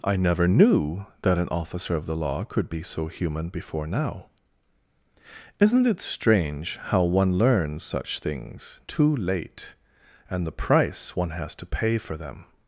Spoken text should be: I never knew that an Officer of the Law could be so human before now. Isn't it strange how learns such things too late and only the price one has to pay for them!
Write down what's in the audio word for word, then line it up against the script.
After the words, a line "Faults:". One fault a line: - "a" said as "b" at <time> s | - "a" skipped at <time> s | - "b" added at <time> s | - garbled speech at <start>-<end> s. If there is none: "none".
I never knew that an Officer of the Law could be so human before now. Isn't it strange how one learns such things too late and the price one has to pay for them!
Faults:
- "one" added at 7.0 s
- "only" skipped at 10.5 s